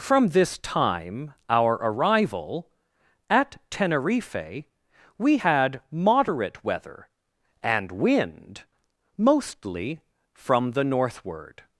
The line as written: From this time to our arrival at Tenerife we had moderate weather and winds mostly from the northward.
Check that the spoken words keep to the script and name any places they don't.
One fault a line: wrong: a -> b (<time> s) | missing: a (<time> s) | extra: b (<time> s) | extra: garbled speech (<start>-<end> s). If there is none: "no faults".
missing: to (1.4 s)
wrong: winds -> wind (7.9 s)